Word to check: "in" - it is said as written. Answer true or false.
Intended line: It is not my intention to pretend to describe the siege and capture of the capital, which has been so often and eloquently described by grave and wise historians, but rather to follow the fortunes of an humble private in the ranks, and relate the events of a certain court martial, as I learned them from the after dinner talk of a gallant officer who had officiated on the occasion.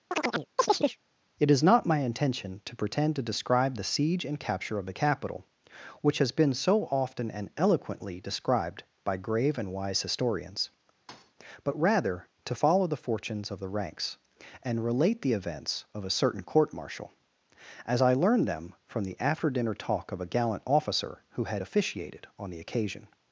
false